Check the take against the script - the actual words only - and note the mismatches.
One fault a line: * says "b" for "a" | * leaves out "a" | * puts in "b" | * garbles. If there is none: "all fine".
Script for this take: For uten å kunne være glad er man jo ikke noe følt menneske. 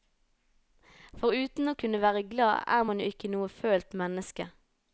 all fine